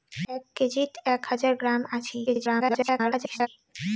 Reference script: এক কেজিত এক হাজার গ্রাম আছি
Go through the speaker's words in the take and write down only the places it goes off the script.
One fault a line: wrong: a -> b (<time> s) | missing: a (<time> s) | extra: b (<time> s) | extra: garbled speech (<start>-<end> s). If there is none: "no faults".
extra: garbled speech (2.3-3.5 s)